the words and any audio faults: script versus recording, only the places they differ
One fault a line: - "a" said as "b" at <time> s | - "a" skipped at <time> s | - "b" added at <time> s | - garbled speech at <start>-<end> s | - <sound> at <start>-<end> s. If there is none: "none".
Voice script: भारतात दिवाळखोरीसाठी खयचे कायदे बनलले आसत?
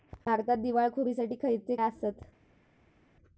- "कायदे बनलले" skipped at 1.7 s